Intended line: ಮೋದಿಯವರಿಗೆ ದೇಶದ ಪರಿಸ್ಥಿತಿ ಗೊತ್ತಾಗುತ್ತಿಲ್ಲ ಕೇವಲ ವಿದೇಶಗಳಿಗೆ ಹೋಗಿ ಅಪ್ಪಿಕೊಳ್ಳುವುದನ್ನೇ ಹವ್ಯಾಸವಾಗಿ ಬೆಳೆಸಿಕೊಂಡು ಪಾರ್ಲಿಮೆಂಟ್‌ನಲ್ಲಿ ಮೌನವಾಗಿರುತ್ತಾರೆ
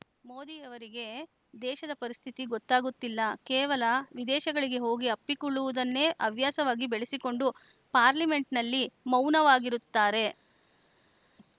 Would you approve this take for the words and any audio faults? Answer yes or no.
yes